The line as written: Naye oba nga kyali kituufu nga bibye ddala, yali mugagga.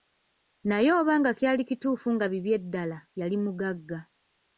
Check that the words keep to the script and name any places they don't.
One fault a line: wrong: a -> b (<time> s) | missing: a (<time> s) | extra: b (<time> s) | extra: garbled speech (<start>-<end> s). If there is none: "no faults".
no faults